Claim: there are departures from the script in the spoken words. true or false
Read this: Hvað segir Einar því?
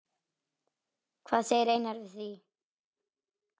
true